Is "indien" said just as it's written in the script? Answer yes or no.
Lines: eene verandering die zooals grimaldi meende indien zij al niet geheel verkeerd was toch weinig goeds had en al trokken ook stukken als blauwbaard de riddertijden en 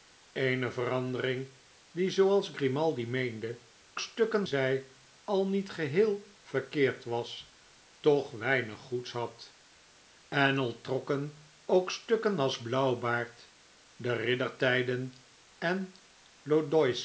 no